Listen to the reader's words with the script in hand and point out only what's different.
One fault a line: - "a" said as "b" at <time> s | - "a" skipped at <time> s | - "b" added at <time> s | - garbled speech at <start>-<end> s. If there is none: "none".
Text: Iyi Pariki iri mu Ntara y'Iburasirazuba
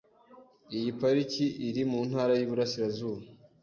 none